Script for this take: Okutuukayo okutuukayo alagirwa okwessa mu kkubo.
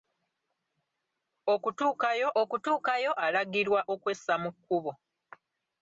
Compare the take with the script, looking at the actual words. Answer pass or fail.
pass